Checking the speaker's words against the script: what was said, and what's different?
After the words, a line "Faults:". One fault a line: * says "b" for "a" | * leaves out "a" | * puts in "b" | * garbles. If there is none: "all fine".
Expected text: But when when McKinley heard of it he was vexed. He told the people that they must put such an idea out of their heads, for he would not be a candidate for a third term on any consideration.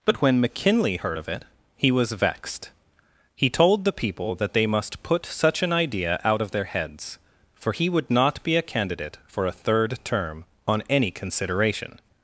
But when McKinley heard of it he was vexed. He told the people that they must put such an idea out of their heads, for he would not be a candidate for a third term on any consideration.
Faults:
* leaves out "when"